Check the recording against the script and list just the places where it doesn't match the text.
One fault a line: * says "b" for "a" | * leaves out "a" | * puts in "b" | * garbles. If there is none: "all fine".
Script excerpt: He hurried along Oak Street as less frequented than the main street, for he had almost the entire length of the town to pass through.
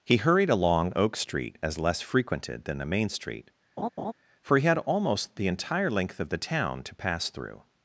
all fine